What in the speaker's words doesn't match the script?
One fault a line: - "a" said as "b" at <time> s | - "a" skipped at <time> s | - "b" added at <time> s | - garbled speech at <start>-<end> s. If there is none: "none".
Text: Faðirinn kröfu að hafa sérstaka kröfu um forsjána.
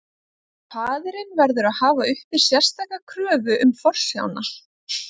- "kröfu" said as "verður" at 1.4 s
- "uppi" added at 2.1 s